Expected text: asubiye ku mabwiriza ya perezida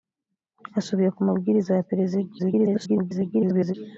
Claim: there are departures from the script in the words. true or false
true